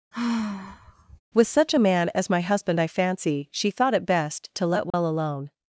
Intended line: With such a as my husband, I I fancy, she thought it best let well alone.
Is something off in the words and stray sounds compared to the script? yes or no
yes